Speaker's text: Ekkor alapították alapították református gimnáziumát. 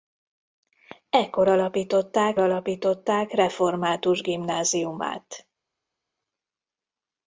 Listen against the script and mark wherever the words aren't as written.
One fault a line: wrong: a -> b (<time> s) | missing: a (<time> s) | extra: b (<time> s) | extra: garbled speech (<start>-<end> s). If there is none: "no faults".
no faults